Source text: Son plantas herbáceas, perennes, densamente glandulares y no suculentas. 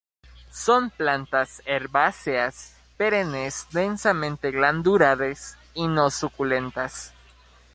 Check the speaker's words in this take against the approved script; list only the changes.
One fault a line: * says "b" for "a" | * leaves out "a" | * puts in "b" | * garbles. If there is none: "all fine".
all fine